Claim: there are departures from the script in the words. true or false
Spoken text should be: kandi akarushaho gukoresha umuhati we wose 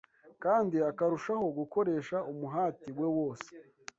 false